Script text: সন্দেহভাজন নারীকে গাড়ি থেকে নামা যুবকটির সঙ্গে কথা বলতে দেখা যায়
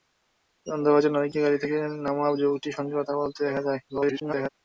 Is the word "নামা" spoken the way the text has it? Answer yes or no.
yes